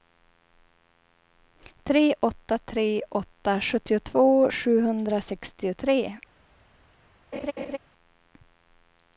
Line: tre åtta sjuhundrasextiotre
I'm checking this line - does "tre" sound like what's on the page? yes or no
yes